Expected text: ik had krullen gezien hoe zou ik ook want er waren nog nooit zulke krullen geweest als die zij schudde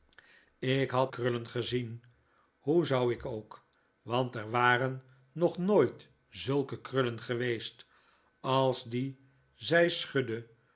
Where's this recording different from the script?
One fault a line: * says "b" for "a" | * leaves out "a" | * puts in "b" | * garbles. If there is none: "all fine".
all fine